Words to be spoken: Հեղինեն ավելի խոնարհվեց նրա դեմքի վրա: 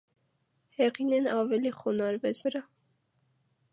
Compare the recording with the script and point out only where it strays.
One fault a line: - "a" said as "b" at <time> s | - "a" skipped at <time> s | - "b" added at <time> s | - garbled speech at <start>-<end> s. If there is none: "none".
- "նրա դեմքի" skipped at 2.4 s